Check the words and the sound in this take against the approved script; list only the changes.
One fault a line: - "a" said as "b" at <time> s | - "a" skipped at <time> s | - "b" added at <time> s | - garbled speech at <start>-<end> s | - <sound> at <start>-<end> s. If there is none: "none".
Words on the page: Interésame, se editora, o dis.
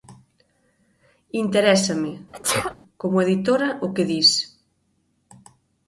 - sneeze at 2.3-2.8 s
- "se" said as "como" at 3.0 s
- "que" added at 3.9 s